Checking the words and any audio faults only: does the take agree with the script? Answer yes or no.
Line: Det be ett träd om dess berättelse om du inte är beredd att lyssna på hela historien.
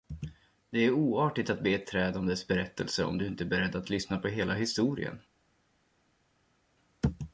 no